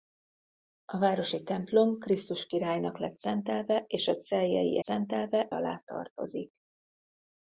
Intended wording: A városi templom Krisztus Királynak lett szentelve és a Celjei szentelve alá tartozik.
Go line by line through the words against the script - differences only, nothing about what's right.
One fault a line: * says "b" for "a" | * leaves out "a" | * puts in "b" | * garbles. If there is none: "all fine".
all fine